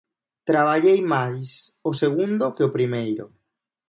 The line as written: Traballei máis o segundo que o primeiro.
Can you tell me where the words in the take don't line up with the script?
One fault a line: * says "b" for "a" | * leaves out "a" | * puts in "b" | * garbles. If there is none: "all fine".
all fine